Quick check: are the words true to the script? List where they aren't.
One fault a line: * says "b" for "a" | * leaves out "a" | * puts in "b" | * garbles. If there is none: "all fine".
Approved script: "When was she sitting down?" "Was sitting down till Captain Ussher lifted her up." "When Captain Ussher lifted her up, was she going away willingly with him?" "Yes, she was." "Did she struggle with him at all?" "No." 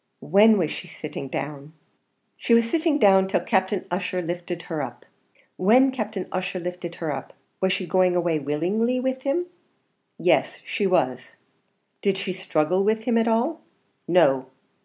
* puts in "She"